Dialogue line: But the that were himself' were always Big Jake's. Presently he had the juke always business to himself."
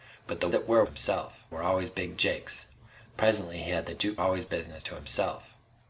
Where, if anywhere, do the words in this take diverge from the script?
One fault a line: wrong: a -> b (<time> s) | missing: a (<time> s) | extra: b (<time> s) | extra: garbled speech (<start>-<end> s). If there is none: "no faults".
no faults